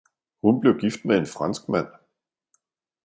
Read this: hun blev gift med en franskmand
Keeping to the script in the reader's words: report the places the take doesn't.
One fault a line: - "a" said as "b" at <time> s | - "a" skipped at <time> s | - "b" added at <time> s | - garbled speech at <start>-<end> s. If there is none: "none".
none